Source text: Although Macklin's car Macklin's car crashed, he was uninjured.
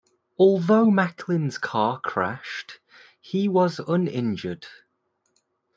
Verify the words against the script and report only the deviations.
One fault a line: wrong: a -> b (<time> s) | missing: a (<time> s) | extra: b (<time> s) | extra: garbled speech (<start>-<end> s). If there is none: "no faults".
missing: Macklin's car (2.0 s)